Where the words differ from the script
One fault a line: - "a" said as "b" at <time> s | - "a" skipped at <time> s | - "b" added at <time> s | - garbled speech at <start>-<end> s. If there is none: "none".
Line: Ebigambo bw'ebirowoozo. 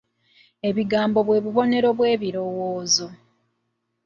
- "bwe bubonero" added at 1.3 s